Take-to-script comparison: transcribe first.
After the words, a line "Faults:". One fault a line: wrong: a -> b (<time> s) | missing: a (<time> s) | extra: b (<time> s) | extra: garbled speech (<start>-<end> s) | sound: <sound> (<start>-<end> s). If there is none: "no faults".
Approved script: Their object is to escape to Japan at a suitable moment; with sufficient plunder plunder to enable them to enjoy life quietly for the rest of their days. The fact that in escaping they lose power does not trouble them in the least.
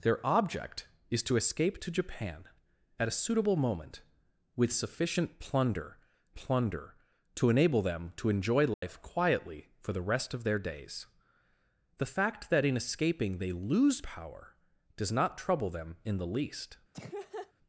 Their object is to escape to Japan at a suitable moment; with sufficient plunder plunder to enable them to enjoy life quietly for the rest of their days. The fact that in escaping they lose power does not trouble them in the least.
Faults:
sound: dropout (8.7-8.8 s)
sound: laugh (16.9-17.5 s)